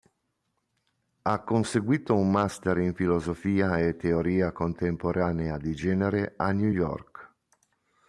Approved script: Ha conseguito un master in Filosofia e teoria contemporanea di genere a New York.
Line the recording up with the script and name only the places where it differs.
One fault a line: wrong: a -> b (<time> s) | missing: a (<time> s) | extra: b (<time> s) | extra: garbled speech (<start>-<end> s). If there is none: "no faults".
no faults